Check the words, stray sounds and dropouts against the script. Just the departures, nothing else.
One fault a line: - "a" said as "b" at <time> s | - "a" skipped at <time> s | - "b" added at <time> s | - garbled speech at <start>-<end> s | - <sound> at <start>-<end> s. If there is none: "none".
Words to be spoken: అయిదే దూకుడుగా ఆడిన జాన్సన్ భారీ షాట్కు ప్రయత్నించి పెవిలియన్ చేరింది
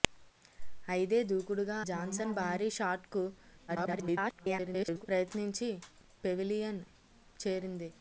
- "ఆడిన" skipped at 1.8 s
- garbled speech at 3.7-5.1 s